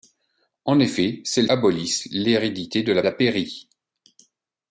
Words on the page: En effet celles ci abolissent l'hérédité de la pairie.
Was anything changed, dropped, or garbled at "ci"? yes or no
yes